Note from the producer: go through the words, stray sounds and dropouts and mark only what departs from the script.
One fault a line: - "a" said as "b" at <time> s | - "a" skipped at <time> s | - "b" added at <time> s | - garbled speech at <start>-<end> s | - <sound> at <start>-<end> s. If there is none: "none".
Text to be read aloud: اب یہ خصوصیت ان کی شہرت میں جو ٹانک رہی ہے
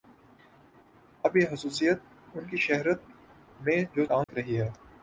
- dropout at 4.2-4.3 s